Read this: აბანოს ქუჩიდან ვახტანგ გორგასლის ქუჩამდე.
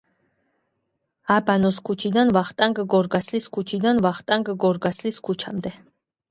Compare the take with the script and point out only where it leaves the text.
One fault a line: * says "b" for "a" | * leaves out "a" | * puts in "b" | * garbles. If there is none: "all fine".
* puts in "ქუჩიდან ვახტანგ გორგასლის"